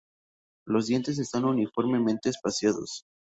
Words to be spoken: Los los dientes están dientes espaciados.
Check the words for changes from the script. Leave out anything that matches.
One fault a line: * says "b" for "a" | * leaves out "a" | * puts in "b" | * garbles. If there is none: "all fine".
* leaves out "los"
* says "uniformemente" for "dientes"